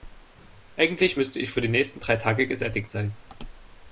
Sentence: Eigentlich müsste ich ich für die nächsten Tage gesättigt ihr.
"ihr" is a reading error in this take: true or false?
true